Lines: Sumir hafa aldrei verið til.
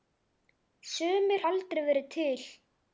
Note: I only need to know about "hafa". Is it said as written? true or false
false